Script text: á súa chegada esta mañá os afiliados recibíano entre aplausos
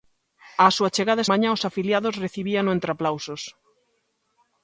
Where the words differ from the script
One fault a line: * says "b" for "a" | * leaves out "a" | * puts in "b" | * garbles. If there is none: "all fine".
* leaves out "esta"